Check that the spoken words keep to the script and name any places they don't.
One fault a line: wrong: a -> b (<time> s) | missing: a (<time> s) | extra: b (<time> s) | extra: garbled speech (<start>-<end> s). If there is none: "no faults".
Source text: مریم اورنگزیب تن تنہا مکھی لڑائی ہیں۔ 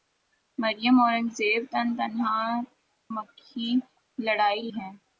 no faults